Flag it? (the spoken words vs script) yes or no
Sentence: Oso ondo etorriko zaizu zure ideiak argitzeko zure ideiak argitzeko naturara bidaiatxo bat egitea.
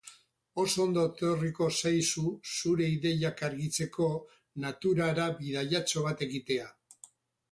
yes